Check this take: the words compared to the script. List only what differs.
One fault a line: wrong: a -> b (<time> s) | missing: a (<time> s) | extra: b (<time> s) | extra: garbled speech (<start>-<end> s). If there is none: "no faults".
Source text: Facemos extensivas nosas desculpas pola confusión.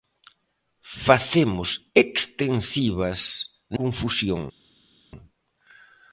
missing: nosas desculpas pola (3.2 s)